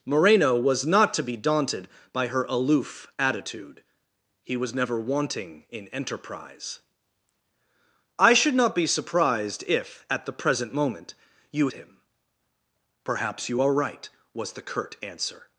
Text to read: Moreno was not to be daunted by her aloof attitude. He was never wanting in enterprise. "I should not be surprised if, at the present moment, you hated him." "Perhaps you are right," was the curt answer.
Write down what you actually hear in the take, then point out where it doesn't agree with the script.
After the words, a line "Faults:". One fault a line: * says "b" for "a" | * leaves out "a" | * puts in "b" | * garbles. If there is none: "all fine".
Moreno was not to be daunted by her aloof attitude. He was never wanting in enterprise. "I should not be surprised if, at the present moment, you him." "Perhaps you are right," was the curt answer.
Faults:
* leaves out "hated"